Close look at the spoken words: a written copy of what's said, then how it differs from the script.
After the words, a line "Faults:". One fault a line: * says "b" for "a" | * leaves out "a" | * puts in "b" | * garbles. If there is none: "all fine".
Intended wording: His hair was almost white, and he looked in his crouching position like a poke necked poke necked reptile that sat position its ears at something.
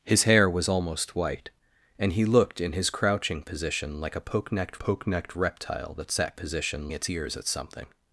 His hair was almost white, and he looked in his crouching position like a poke necked poke necked reptile that sat position its ears at something.
Faults:
all fine